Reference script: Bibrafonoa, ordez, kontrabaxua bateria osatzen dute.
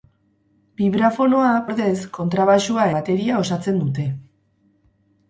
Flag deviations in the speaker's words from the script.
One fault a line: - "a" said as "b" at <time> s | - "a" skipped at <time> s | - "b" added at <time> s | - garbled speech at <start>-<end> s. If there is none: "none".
none